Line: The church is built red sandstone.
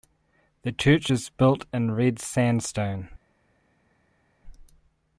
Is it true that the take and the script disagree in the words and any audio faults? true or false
true